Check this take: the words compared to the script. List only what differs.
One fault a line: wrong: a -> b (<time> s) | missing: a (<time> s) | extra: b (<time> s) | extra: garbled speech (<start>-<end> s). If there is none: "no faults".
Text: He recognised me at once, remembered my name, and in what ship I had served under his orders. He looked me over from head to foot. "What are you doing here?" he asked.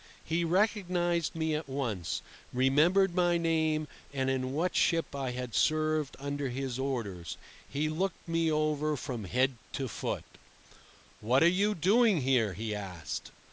no faults